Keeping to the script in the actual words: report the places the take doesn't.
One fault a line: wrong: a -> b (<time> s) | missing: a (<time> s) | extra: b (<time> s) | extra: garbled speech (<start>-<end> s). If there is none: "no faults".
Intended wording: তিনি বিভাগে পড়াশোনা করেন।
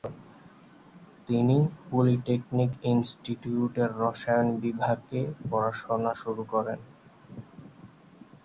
extra: পলিটেকনিক ইনস্টিটিউটের রসায়ন (1.9 s)
extra: শুরু (6.2 s)